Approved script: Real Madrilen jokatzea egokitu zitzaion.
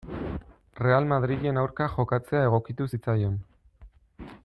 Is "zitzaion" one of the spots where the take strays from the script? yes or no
no